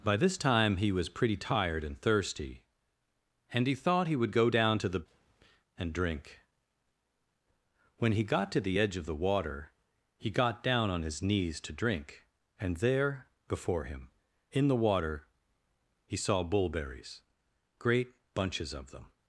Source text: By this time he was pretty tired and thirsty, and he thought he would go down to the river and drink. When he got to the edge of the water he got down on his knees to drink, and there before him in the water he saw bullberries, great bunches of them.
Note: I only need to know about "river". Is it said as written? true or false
false